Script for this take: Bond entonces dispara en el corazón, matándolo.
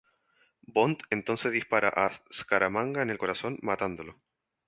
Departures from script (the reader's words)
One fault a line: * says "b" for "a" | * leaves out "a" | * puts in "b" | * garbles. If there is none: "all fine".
* puts in "a Scaramanga"